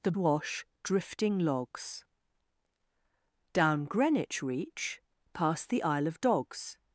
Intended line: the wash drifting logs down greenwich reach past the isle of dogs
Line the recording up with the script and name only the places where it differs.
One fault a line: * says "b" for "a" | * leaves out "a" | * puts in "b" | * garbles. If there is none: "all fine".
all fine